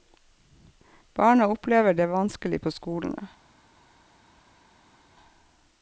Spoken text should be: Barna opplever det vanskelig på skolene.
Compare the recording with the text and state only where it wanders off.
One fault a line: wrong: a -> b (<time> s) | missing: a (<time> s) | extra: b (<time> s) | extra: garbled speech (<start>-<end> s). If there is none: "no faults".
no faults